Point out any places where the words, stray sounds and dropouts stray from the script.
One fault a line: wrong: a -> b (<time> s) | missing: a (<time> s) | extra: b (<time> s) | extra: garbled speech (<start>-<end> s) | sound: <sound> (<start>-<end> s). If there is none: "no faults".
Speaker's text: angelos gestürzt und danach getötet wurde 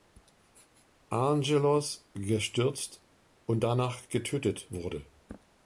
no faults